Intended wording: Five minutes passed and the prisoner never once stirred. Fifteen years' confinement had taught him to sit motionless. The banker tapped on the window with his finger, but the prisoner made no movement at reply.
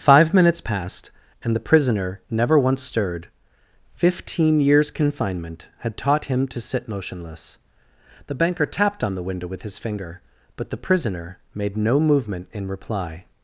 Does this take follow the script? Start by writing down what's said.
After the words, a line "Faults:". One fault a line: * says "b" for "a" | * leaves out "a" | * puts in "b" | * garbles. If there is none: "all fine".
Five minutes passed and the prisoner never once stirred. Fifteen years' confinement had taught him to sit motionless. The banker tapped on the window with his finger, but the prisoner made no movement in reply.
Faults:
* says "in" for "at"